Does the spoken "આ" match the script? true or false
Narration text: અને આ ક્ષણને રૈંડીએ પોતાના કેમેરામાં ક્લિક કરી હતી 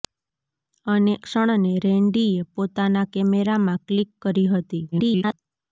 false